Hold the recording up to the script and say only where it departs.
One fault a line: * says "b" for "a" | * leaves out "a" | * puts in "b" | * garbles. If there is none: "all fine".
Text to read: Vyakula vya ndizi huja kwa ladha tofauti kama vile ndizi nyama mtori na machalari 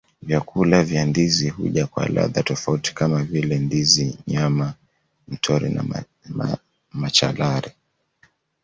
all fine